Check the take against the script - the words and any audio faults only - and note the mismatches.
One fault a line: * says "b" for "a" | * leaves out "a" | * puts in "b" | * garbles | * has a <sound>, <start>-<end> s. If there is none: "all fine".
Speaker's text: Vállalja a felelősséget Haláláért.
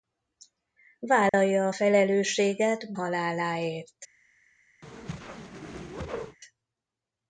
* has a dropout, 1.3-1.3 s
* has a whoosh, 4.8-6.4 s